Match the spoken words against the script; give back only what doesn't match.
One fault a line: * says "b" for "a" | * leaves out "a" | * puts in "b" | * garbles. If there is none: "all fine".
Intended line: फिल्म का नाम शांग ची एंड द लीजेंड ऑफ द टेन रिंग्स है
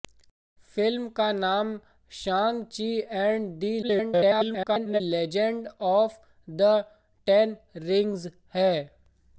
* garbles